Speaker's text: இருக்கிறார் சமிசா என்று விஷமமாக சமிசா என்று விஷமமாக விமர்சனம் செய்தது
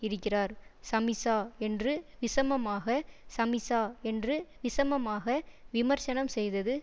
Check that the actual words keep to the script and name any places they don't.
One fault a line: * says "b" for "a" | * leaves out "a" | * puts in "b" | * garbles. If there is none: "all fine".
all fine